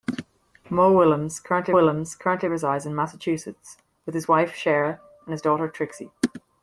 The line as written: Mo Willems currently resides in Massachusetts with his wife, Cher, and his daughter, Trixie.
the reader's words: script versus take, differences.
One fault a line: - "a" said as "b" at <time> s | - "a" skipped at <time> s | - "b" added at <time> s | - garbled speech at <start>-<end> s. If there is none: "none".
- "Willems currently" added at 1.7 s